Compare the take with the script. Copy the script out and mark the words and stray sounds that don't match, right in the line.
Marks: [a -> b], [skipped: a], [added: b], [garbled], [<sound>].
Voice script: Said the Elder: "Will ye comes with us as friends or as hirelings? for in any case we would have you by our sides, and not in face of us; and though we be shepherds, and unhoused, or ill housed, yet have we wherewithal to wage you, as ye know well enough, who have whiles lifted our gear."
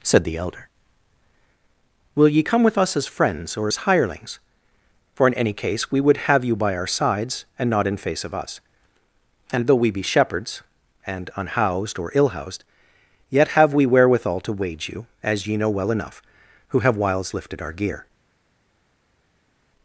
Said the Elder: "Will ye [comes -> come] with us as friends or as hirelings? for in any case we would have you by our sides, and not in face of us; and though we be shepherds, and unhoused, or ill housed, yet have we wherewithal to wage you, as ye know well enough, who have whiles lifted our gear."